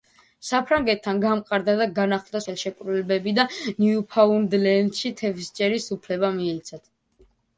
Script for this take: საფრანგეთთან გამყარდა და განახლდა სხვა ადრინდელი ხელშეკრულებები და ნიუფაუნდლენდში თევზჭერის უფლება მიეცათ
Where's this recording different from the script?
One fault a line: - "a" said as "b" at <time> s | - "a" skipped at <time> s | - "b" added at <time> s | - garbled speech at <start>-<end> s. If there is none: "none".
- "სხვა ადრინდელი" skipped at 2.4 s